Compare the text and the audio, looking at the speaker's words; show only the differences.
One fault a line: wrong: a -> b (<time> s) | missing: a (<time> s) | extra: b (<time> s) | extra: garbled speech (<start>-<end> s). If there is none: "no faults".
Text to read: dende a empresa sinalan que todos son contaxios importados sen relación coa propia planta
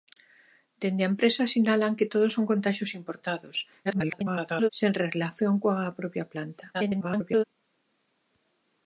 extra: garbled speech (3.8-4.7 s)
extra: garbled speech (6.7-7.4 s)